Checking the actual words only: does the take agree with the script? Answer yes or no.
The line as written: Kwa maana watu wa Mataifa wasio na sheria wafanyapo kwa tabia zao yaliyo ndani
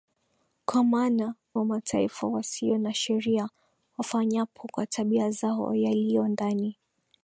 no